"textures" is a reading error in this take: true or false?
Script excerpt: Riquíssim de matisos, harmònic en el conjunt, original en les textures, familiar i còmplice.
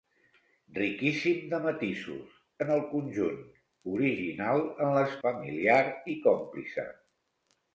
true